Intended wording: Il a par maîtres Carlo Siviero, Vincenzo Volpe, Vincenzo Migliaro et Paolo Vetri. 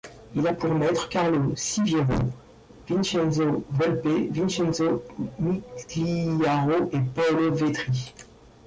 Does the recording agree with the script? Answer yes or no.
no